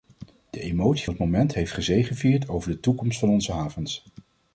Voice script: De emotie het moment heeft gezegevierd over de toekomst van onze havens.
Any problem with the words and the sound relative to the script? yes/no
no